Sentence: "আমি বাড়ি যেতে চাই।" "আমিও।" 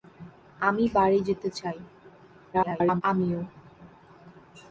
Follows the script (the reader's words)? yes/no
no